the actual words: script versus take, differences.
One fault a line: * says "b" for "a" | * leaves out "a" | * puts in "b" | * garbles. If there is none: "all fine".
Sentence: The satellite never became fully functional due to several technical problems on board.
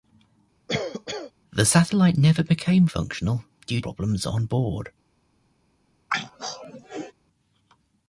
* leaves out "fully"
* leaves out "to several technical"